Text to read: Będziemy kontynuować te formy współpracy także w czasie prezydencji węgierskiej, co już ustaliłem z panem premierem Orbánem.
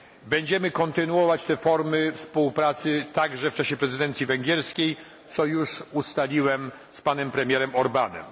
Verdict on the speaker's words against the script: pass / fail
pass